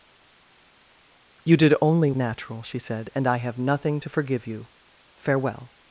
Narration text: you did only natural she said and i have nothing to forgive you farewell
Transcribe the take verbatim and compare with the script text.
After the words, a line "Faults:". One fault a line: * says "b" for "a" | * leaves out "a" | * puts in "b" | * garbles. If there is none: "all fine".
you did only natural she said and i have nothing to forgive you farewell
Faults:
all fine